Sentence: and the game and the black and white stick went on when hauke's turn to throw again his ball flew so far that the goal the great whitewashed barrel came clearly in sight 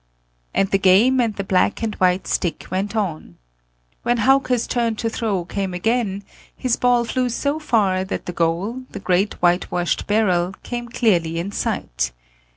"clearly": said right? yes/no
yes